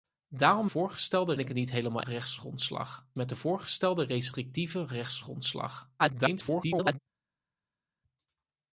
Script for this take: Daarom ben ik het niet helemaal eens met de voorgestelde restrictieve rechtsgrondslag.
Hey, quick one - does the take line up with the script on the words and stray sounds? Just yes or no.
no